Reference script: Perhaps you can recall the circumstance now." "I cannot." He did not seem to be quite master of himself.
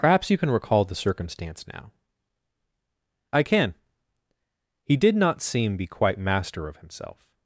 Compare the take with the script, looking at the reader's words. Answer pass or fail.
fail